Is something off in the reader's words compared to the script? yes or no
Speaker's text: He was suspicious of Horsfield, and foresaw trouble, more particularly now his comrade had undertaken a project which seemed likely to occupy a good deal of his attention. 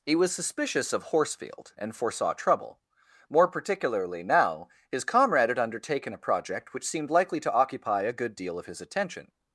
no